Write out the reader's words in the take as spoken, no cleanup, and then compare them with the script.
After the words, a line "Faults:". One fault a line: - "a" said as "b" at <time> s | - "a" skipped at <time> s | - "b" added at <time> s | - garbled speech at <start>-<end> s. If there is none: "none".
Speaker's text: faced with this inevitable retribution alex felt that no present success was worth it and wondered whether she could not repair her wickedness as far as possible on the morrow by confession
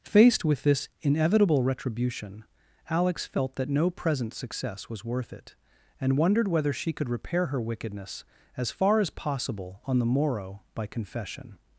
faced with this inevitable retribution alex felt that no present success was worth it and wondered whether she could repair her wickedness as far as possible on the morrow by confession
Faults:
- "not" skipped at 7.1 s